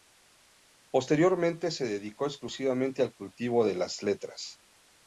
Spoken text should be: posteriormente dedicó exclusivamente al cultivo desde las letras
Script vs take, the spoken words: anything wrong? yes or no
yes